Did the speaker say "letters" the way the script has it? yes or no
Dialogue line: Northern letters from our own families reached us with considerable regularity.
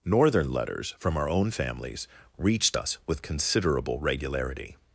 yes